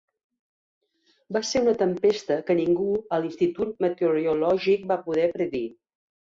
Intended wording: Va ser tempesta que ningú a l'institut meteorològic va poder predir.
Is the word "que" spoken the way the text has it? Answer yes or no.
yes